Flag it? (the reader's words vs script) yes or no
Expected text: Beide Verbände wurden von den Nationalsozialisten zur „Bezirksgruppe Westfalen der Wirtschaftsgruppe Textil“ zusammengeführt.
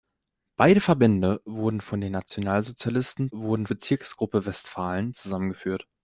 yes